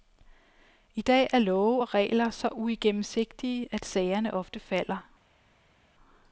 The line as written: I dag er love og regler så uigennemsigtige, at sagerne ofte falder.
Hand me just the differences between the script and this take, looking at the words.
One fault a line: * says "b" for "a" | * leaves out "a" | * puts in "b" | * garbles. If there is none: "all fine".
all fine